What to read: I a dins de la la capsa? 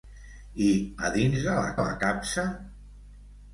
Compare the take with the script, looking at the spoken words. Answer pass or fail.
pass